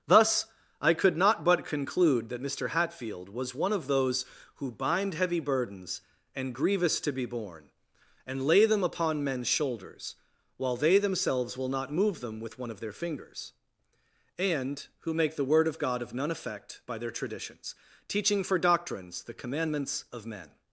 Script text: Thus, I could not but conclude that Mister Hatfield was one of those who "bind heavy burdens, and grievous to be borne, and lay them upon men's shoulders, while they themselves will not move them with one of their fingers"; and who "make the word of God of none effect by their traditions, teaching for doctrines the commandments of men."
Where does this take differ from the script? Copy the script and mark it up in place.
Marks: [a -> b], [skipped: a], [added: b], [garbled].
Thus, I could not but conclude that Mister Hatfield was one of those who "bind heavy burdens, and grievous to be borne, and lay them upon men's shoulders, while they themselves will not move them with one of their fingers"; and who "make the word of God of none effect by their traditions, teaching for doctrines the commandments of men."